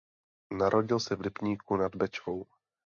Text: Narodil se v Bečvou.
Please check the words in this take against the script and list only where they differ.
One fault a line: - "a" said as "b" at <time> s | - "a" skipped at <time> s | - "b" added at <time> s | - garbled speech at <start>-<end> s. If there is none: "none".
- "Lipníku nad" added at 1.2 s